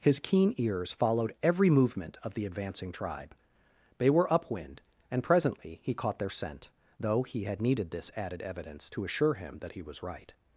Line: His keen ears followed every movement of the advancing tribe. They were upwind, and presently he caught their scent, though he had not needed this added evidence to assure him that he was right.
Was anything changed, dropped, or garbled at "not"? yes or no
yes